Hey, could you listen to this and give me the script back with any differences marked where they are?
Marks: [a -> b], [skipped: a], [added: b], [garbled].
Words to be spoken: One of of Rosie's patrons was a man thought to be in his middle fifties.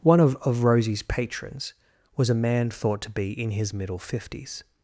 One of of Rosie's patrons was a man thought to be in his middle fifties.